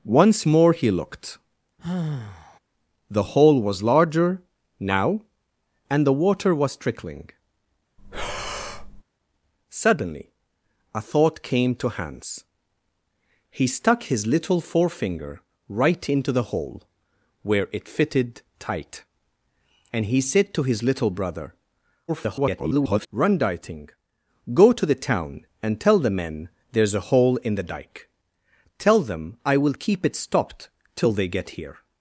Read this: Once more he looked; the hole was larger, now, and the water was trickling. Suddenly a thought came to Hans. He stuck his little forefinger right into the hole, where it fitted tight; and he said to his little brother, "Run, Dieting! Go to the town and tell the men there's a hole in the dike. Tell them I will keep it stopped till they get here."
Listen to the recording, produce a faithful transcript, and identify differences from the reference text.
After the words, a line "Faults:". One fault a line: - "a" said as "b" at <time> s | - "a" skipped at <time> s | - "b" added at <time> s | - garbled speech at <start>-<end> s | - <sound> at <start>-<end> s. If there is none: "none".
Once more he looked; the hole was larger, now, and the water was trickling. Suddenly a thought came to Hans. He stuck his little forefinger right into the hole, where it fitted tight; and he said to his little brother, [garbled] "Run, Dieting! Go to the town and tell the men there's a hole in the dike. Tell them I will keep it stopped till they get here."
Faults:
- sigh at 1.8-2.6 s
- breath at 8.0-9.0 s
- garbled speech at 22.1-23.1 s